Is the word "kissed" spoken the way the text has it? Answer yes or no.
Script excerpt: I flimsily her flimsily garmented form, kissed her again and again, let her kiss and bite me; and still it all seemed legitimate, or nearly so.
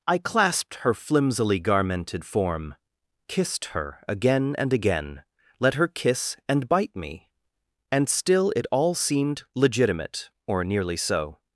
yes